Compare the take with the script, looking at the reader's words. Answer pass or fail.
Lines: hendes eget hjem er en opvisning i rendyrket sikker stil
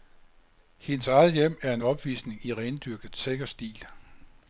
pass